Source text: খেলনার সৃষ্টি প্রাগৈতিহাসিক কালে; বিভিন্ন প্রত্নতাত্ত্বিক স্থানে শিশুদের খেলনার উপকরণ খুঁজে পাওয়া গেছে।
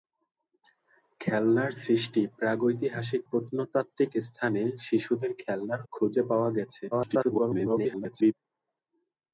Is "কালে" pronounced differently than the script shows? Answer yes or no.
yes